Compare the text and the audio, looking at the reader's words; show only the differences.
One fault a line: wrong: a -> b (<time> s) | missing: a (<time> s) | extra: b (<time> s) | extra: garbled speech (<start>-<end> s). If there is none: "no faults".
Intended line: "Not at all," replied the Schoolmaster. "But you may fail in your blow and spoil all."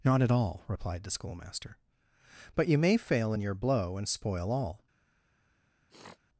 no faults